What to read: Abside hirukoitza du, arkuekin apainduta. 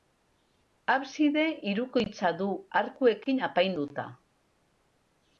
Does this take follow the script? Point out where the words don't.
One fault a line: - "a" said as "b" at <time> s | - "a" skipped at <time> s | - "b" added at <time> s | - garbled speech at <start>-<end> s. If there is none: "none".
none